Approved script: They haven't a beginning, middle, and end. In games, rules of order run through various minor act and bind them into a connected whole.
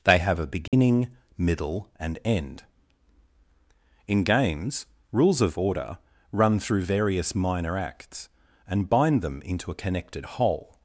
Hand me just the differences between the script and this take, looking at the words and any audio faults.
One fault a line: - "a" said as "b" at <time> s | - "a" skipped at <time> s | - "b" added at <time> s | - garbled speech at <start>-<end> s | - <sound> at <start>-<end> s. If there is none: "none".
- "haven't" said as "have" at 0.2 s
- dropout at 0.7-0.7 s
- "act" said as "acts" at 7.8 s